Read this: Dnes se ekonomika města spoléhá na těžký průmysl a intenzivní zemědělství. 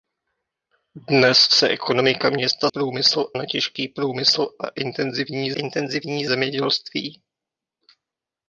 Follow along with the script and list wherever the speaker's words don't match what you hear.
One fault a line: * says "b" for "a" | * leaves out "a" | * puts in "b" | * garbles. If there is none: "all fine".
* says "průmysl" for "spoléhá"
* puts in "intenzivní"